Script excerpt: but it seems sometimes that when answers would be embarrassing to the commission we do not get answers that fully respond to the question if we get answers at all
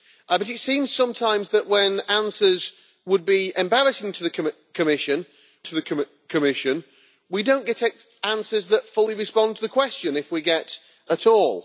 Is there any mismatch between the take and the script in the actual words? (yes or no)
yes